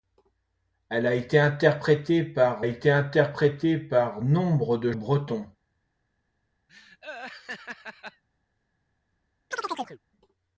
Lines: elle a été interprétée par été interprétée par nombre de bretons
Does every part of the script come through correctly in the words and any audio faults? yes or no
no